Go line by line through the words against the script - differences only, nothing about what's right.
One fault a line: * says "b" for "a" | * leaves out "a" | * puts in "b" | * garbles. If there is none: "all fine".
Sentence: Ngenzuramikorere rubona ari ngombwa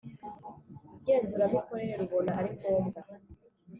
all fine